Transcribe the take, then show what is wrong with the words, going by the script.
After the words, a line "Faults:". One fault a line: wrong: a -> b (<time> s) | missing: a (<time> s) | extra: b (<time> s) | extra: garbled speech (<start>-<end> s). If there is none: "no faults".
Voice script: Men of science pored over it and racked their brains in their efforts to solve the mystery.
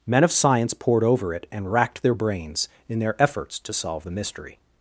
Men of science pored over it and racked their brains in their efforts to solve the mystery.
Faults:
no faults